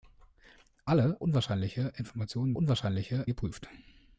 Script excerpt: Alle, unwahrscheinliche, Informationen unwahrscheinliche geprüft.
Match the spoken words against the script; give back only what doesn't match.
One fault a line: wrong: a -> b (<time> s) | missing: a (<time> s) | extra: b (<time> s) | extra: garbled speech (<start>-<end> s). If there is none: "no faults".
no faults